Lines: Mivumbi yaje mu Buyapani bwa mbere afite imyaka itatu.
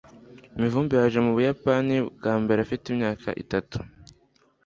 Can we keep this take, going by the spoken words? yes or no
yes